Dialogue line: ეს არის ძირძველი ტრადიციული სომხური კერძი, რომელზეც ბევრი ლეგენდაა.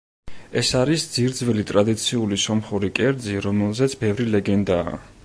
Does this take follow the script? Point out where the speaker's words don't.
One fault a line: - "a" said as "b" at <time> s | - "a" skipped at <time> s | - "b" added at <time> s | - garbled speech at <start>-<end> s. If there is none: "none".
none